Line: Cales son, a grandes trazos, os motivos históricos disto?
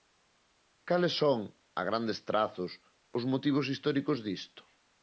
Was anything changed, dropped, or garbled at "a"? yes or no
no